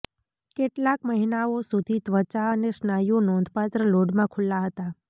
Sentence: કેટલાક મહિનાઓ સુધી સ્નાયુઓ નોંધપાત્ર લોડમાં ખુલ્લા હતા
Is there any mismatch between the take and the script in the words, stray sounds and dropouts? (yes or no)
yes